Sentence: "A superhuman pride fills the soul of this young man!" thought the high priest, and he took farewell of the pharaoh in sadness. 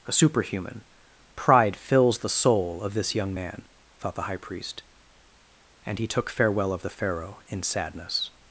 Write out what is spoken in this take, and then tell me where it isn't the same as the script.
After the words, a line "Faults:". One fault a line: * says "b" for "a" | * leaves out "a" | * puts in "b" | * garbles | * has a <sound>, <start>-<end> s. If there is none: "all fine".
"A superhuman pride fills the soul of this young man!" thought the high priest, and he took farewell of the pharaoh in sadness.
Faults:
all fine